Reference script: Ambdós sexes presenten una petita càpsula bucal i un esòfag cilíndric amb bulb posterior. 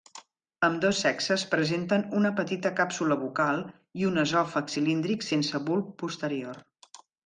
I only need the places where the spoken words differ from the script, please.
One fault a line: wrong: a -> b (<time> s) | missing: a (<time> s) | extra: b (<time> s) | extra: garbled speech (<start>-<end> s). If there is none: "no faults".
wrong: amb -> sense (5.3 s)